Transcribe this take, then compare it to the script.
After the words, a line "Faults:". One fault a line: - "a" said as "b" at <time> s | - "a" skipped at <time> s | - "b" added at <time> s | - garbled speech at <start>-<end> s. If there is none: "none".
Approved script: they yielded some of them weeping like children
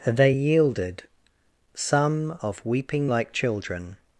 they yielded some of weeping like children
Faults:
- "them" skipped at 2.6 s